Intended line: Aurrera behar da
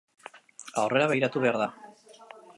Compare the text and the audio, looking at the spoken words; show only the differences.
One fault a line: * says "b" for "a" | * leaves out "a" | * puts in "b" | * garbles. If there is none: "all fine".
* puts in "begiratu"